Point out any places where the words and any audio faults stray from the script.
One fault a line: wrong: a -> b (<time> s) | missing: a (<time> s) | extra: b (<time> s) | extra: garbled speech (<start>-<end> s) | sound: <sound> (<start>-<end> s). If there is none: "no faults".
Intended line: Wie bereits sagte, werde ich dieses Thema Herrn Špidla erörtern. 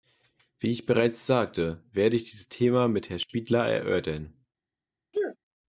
extra: ich (0.7 s)
extra: mit (2.9 s)
sound: sneeze (5.1-5.4 s)